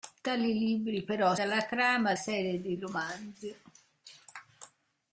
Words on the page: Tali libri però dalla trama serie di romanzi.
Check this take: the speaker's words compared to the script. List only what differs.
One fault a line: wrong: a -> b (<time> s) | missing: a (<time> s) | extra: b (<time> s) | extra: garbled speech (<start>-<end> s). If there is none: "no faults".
no faults